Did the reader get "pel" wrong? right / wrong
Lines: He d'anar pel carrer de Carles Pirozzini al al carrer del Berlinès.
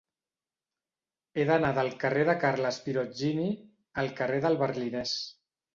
wrong